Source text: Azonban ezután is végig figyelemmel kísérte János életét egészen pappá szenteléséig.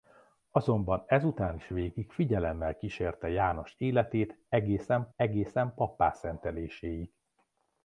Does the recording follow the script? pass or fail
fail